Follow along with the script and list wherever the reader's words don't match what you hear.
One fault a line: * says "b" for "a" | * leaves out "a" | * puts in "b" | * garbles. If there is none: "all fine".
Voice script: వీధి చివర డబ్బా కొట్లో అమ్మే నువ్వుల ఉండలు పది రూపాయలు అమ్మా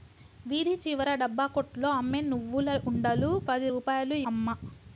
all fine